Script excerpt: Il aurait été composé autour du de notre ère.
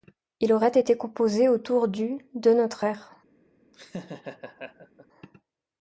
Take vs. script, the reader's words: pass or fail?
pass